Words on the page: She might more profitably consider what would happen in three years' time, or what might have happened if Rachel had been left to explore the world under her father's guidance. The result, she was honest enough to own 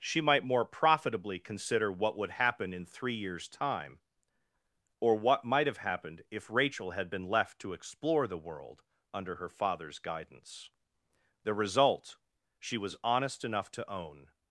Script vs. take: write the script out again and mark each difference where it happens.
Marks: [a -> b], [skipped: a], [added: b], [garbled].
She might more profitably consider what would happen in three years' time, or what might have happened if Rachel had been left to explore the world under her father's guidance. The result, she was honest enough to own